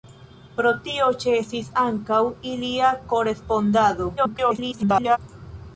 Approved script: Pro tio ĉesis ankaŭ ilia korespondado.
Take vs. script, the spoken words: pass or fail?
fail